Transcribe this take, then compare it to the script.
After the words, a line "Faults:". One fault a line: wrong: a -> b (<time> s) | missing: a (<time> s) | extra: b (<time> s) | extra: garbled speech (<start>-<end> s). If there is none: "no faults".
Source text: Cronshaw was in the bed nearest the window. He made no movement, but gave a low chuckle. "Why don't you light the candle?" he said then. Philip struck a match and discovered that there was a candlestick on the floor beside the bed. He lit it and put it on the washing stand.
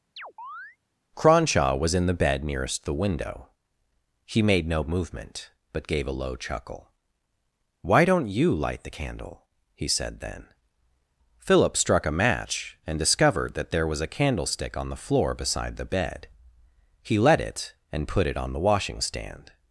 Cronshaw was in the bed nearest the window. He made no movement, but gave a low chuckle. "Why don't you light the candle?" he said then. Philip struck a match and discovered that there was a candlestick on the floor beside the bed. He let it and put it on the washing stand.
Faults:
wrong: lit -> let (17.2 s)